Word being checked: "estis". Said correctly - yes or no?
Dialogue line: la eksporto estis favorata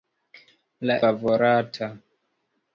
no